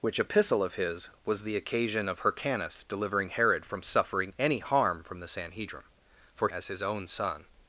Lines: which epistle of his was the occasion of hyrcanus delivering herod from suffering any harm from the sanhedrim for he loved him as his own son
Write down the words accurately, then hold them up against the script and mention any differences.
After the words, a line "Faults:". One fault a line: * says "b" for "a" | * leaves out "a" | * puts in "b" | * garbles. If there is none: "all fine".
which epistle of his was the occasion of hyrcanus delivering herod from suffering any harm from the sanhedrim for as his own son
Faults:
* leaves out "he loved him"